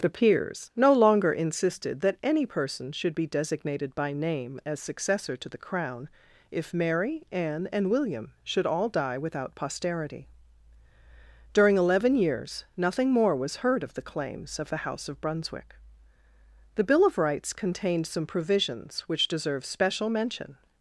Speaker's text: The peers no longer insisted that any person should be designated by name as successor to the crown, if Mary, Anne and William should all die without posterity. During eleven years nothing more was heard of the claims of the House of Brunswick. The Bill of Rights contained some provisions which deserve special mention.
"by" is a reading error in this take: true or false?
false